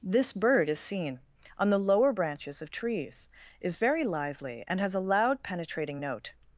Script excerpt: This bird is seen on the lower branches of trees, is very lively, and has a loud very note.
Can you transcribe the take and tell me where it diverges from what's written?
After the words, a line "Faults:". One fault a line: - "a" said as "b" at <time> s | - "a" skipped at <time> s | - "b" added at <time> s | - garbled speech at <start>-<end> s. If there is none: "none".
This bird is seen on the lower branches of trees, is very lively, and has a loud penetrating note.
Faults:
- "very" said as "penetrating" at 5.4 s